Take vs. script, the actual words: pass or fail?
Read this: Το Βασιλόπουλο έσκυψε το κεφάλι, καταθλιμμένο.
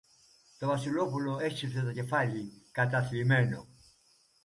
pass